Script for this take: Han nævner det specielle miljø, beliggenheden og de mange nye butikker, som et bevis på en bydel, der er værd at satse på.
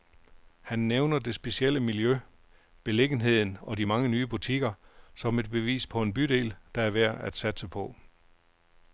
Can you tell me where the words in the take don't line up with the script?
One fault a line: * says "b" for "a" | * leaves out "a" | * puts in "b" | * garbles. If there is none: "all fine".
all fine